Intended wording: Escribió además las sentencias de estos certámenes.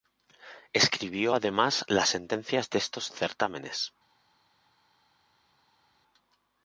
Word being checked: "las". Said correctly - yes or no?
yes